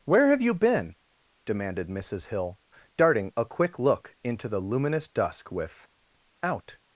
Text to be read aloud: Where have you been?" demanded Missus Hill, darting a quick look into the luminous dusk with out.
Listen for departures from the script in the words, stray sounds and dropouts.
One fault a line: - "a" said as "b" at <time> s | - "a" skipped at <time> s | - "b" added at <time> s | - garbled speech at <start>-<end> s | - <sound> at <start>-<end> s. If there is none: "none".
none